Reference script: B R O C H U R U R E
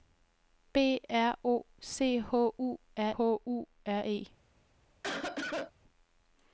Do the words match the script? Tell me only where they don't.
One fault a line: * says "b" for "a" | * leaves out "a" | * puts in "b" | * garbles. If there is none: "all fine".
all fine